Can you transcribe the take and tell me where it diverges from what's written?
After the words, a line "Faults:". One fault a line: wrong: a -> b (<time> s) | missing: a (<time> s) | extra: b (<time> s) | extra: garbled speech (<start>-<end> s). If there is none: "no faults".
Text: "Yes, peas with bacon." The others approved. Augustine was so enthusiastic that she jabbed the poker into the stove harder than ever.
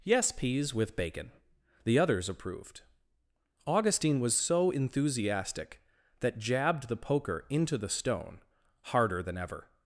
"Yes, peas with bacon." The others approved. Augustine was so enthusiastic that jabbed the poker into the stone harder than ever.
Faults:
missing: she (6.4 s)
wrong: stove -> stone (7.9 s)